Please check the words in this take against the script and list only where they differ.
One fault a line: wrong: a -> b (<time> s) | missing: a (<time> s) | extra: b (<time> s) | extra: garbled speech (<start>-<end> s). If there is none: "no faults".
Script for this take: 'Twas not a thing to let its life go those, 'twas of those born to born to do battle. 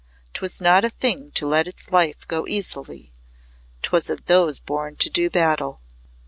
wrong: those -> easily (2.5 s)
missing: born to (5.1 s)